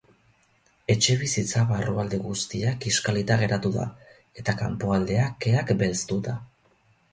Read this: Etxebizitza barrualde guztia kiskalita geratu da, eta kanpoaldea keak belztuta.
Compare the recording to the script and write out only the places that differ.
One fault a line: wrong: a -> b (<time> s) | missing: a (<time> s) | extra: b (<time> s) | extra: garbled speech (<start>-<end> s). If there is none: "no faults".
no faults